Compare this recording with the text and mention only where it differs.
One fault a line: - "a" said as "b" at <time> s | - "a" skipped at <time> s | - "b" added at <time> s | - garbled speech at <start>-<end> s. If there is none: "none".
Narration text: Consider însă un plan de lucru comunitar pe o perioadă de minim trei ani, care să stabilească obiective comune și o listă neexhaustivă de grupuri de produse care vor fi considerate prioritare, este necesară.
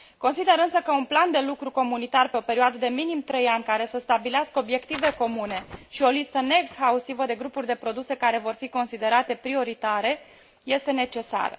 - "că" added at 0.8 s